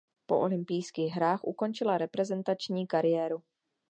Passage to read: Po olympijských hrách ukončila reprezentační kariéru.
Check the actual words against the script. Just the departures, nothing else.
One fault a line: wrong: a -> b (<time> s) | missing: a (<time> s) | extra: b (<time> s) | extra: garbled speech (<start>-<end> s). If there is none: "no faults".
no faults